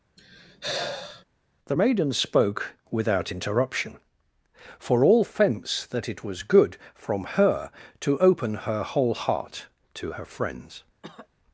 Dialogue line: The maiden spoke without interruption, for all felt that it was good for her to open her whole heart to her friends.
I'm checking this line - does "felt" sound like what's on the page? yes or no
no